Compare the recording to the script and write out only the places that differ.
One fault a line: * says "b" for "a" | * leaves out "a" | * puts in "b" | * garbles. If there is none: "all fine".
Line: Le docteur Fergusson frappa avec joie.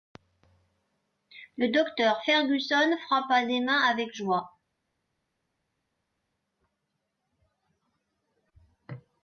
* puts in "des mains"